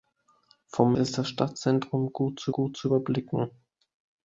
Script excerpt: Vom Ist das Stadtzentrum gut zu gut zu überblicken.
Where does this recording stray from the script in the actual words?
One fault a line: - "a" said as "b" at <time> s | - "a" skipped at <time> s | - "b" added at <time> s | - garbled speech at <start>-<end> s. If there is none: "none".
none